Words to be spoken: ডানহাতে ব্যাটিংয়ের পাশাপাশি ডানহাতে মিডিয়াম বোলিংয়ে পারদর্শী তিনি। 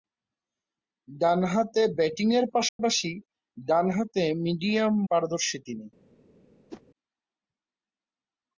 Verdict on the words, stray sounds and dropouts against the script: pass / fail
fail